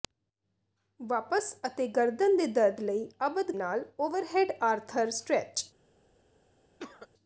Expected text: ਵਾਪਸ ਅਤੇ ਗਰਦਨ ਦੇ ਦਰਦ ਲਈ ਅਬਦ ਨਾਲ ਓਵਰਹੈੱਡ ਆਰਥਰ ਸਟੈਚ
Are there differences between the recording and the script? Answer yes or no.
no